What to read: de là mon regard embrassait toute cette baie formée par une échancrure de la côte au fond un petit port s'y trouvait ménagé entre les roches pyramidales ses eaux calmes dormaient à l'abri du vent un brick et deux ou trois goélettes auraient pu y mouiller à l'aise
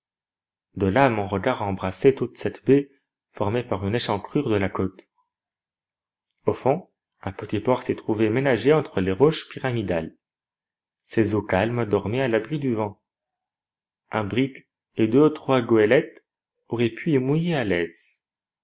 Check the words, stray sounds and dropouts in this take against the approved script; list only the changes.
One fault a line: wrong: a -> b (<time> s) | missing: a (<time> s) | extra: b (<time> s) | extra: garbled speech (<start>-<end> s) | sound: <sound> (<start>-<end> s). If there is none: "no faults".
no faults